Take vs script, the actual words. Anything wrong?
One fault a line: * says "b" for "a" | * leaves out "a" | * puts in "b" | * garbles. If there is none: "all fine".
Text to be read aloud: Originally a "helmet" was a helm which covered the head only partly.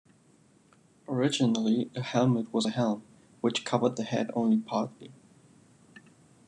all fine